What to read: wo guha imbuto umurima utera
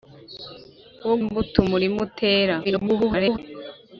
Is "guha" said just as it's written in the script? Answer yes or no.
no